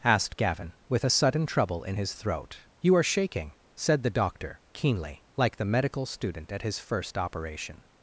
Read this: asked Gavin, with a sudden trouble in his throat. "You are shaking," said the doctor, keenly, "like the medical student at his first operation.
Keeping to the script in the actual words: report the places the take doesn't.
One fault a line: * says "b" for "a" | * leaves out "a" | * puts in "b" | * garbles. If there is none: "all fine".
all fine